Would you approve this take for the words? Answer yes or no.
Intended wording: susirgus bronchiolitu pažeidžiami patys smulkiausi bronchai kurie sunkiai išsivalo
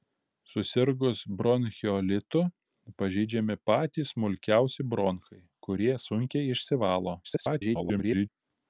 no